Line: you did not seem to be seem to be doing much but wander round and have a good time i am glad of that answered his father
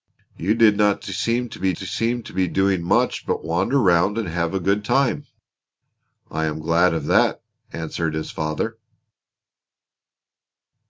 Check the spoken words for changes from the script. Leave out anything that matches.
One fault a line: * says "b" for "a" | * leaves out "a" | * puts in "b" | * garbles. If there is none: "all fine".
all fine